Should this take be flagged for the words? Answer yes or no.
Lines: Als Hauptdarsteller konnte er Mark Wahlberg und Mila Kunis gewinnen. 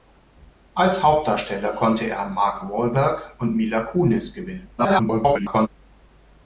yes